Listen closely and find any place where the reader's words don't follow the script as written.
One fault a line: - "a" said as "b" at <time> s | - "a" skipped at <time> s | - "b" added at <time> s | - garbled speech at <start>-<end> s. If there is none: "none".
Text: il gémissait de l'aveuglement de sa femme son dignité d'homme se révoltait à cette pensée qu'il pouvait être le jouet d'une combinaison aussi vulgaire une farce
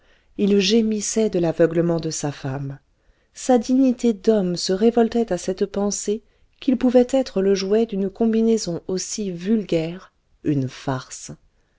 - "son" said as "sa" at 3.4 s